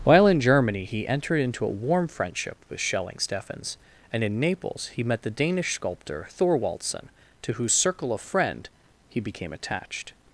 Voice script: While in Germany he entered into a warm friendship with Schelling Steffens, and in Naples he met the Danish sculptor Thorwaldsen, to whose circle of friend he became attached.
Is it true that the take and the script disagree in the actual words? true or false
false